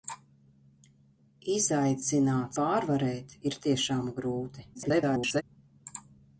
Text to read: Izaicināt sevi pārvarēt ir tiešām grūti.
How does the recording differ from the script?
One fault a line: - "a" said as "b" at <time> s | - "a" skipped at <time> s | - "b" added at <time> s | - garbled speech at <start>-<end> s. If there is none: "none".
- "sevi" skipped at 2.6 s
- garbled speech at 4.7-5.4 s